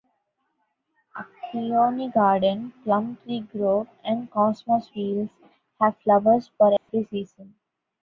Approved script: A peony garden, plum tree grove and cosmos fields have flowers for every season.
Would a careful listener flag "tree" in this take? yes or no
no